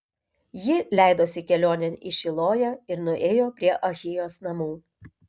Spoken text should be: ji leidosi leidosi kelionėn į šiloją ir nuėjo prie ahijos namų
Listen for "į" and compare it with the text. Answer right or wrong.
right